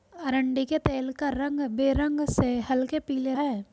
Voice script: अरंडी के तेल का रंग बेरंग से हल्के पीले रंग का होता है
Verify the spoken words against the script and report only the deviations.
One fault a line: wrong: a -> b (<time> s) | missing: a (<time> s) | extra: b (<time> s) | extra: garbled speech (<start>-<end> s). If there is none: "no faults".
missing: रंग का होता (3.3 s)